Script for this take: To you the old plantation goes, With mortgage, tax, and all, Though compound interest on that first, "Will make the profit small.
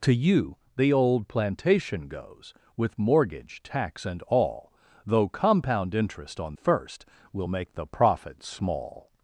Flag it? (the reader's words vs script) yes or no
yes